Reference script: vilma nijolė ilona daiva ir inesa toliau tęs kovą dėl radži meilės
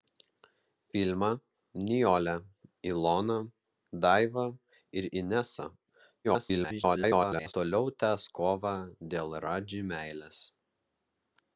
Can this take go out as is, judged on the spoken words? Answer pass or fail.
fail